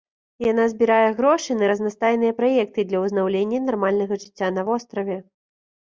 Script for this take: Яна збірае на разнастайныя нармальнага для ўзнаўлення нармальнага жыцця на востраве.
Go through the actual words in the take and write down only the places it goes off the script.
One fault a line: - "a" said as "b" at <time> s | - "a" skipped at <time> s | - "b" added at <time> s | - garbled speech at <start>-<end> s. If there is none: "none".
- "грошы" added at 1.2 s
- "нармальнага" said as "праекты" at 2.4 s